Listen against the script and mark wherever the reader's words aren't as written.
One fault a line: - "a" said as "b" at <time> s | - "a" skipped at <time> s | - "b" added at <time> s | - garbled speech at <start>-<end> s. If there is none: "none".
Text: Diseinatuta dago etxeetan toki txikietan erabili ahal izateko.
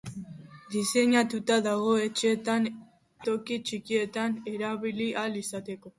none